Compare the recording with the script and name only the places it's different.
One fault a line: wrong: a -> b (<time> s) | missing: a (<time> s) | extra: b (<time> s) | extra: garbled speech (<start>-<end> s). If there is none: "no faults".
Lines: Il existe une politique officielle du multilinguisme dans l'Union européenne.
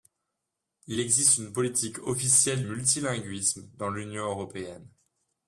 missing: du (2.6 s)